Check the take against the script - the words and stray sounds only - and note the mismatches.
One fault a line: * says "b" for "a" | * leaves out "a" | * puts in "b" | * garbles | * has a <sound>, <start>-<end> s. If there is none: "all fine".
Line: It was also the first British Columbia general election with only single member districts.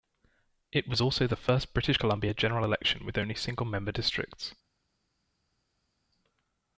all fine